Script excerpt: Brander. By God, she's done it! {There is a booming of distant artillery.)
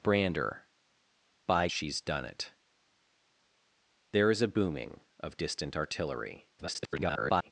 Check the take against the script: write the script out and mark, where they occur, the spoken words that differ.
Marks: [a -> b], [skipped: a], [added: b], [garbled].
Brander. By [skipped: God,] she's done it! {There is a booming of distant artillery.) [garbled]